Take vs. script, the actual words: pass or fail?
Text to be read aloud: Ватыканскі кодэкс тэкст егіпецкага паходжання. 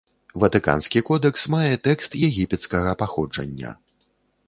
fail